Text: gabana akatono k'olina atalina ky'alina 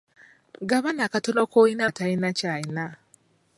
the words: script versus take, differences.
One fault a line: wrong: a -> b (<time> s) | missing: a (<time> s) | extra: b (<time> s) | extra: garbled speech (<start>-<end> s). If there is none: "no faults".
no faults